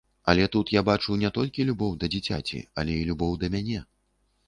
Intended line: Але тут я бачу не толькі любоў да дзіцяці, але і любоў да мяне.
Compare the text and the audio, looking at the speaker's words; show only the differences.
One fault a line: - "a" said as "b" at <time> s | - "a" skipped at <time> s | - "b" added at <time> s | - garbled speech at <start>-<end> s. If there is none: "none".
none